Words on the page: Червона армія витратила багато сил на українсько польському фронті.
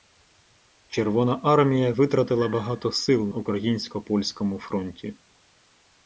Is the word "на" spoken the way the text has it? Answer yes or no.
no